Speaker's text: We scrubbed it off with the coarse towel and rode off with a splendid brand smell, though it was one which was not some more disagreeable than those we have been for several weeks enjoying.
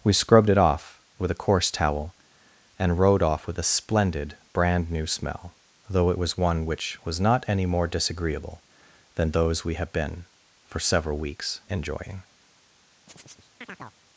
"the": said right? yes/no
no